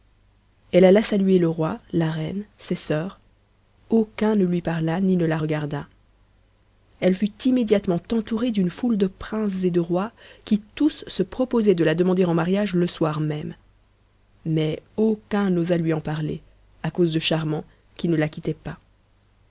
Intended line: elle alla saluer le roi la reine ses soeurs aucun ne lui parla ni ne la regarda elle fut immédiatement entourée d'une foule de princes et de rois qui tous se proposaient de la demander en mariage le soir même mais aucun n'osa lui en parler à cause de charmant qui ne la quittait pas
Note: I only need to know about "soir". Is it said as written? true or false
true